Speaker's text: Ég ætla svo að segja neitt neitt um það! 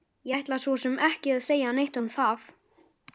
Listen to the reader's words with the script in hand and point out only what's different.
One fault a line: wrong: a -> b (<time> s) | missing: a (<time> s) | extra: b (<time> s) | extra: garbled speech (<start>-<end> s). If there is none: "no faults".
extra: sem ekki (0.8 s)
missing: neitt (2.0 s)